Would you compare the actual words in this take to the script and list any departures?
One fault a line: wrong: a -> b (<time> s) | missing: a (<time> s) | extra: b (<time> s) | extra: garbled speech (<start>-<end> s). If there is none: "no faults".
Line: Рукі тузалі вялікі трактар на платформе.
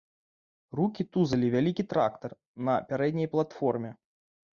extra: пярэдняй (2.9 s)